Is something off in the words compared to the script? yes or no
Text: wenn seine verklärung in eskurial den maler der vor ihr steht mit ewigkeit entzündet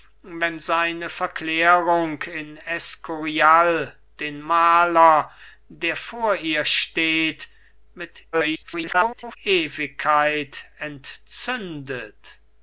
yes